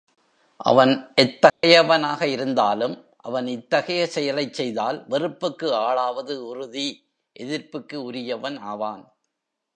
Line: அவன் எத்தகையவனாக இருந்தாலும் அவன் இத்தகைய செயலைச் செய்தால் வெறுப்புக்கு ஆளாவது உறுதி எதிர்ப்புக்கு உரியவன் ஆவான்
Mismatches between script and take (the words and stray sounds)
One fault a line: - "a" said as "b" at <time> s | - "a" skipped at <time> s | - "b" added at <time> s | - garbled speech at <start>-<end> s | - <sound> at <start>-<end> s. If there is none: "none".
- dropout at 1.5-1.6 s